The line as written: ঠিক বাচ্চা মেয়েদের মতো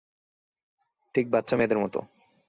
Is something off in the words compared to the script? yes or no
no